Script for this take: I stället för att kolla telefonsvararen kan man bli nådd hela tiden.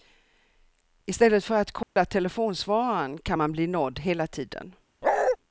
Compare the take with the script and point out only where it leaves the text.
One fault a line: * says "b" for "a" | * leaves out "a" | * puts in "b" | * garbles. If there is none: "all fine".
all fine